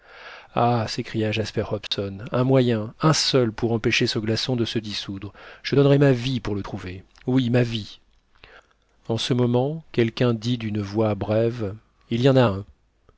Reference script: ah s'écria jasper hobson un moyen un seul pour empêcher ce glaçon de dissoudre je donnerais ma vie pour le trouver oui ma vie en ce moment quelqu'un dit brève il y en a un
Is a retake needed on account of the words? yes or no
yes